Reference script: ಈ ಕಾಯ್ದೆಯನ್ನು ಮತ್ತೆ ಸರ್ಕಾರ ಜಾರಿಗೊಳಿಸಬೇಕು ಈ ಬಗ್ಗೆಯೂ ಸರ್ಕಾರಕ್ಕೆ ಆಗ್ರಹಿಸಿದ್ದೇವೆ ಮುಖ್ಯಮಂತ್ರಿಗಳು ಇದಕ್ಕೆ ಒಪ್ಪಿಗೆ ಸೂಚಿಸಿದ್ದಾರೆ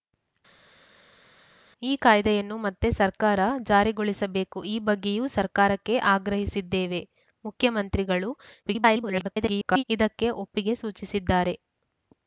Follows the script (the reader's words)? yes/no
no